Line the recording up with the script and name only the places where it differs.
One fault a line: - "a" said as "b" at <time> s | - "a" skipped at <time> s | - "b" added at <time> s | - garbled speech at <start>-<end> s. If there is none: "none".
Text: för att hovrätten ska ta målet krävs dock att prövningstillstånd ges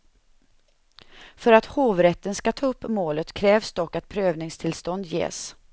- "upp" added at 2.6 s